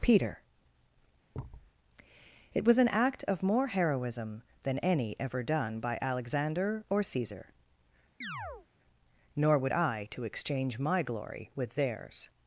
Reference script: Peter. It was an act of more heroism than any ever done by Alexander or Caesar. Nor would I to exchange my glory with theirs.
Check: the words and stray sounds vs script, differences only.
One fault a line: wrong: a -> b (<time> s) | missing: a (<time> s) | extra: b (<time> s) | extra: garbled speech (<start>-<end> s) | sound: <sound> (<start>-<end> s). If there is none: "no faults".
sound: thud (1.3-1.7 s)
sound: chirp (8.2-8.7 s)